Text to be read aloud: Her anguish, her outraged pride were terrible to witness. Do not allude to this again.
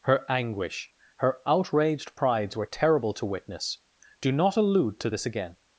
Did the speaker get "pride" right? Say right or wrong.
wrong